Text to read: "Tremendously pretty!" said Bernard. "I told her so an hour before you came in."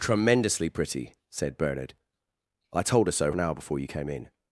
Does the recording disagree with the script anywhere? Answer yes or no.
no